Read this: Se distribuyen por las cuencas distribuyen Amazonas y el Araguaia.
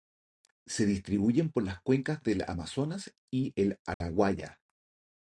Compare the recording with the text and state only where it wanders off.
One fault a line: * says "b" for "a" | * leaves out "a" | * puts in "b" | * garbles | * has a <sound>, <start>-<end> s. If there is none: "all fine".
* says "del" for "distribuyen"
* has a dropout, 3.9-4.0 s